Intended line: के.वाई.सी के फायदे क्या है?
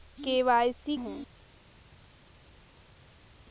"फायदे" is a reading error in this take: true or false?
true